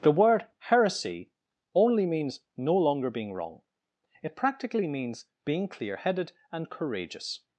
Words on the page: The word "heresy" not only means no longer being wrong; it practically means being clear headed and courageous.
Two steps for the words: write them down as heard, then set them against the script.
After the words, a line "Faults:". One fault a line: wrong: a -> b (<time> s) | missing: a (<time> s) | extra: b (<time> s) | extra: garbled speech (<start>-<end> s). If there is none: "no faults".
The word "heresy" only means no longer being wrong; it practically means being clear headed and courageous.
Faults:
missing: not (1.3 s)